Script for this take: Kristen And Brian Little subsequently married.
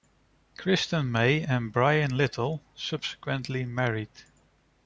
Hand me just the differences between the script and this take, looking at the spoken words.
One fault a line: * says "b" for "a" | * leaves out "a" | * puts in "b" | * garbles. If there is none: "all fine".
* puts in "May"